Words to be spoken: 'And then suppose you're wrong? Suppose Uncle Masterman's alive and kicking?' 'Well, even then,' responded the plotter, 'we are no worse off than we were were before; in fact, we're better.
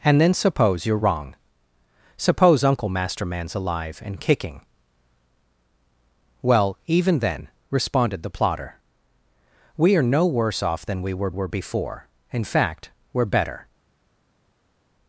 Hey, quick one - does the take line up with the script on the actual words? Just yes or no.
yes